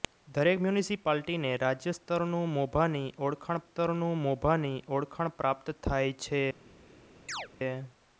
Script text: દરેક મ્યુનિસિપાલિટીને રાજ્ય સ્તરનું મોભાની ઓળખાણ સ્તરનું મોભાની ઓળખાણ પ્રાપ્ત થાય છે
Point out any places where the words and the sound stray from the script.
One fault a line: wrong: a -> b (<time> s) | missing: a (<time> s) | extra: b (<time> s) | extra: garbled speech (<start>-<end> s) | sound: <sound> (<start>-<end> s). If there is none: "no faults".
sound: chirp (7.3-7.5 s)